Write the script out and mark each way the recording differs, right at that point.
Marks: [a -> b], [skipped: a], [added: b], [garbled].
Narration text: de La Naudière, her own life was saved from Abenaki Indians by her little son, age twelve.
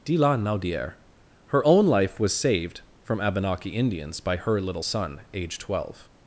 de La Naudière, her own life was saved from Abenaki Indians by her little son, age twelve.